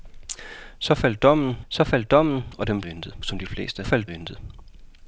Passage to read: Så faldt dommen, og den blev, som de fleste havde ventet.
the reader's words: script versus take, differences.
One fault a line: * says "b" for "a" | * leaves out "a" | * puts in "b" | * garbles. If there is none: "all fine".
* puts in "så faldt dommen"
* says "ventet" for "blev"
* says "faldt" for "havde"